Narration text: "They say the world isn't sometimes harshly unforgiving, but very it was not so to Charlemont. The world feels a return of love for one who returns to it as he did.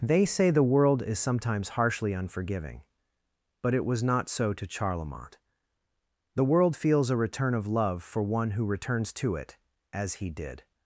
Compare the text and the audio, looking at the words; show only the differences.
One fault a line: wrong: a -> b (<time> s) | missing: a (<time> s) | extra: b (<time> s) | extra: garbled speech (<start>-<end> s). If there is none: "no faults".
wrong: isn't -> is (1.0 s)
missing: very (3.8 s)